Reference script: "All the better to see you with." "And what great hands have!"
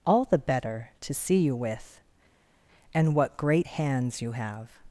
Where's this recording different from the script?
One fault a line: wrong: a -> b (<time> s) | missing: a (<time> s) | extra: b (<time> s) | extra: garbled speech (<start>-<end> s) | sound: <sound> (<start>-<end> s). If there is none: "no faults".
extra: you (4.2 s)